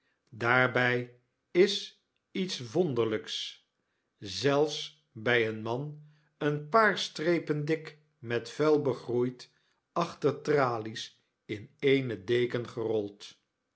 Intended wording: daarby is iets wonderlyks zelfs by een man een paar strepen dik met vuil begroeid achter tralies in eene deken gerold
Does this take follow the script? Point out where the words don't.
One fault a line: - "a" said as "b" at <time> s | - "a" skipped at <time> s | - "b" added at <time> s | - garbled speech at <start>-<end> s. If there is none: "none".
none